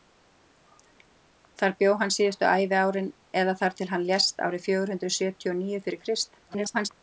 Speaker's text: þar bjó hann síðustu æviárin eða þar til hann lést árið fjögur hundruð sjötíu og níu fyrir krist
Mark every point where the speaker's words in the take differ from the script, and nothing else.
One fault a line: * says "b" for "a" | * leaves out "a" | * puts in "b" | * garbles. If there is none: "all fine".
* garbles